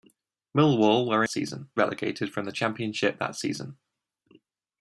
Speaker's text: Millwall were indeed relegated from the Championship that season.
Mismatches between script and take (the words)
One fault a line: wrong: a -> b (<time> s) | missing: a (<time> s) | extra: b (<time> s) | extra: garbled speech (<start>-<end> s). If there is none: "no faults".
wrong: indeed -> season (1.3 s)